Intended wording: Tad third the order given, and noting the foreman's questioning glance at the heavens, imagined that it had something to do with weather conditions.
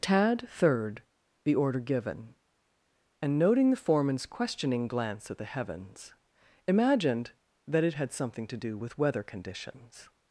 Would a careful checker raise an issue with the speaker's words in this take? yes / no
no